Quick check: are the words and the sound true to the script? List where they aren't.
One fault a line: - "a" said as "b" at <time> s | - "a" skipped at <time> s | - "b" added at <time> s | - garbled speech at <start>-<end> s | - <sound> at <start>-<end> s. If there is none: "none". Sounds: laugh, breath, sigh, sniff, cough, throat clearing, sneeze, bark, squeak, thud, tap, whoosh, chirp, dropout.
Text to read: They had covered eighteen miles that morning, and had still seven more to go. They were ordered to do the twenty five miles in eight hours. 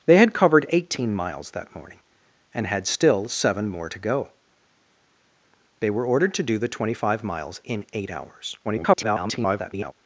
- garbled speech at 8.6-9.9 s